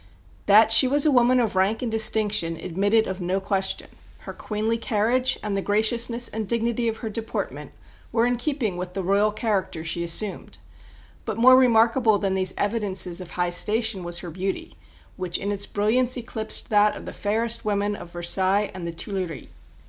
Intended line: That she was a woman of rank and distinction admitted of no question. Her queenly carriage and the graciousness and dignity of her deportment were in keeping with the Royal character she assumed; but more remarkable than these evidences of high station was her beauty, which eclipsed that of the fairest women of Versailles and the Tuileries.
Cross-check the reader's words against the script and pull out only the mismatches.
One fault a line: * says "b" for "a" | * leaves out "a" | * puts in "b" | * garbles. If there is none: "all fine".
* puts in "in its brilliance"